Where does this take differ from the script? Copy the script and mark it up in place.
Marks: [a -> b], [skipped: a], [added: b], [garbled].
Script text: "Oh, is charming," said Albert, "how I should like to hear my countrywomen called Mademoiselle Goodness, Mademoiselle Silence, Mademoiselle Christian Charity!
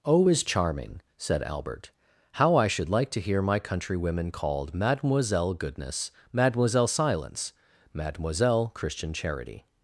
"Oh, is charming," said Albert, "how I should like to hear my countrywomen called Mademoiselle Goodness, Mademoiselle Silence, Mademoiselle Christian Charity!